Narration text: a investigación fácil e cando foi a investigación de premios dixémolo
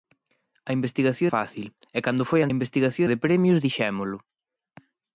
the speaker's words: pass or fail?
pass